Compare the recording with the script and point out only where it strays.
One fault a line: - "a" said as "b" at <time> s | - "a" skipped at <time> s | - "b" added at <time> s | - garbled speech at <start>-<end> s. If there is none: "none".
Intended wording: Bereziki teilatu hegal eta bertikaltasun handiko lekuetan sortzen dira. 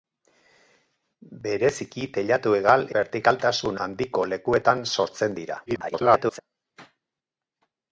- "eta" skipped at 2.9 s
- garbled speech at 5.7-6.4 s